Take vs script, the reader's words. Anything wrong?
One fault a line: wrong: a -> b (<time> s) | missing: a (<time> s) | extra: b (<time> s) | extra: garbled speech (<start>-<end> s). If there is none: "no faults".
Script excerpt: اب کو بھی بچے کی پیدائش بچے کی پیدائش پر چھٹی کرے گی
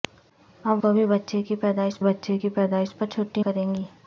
no faults